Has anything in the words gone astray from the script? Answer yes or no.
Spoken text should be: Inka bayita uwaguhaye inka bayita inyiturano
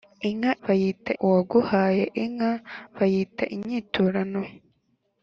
no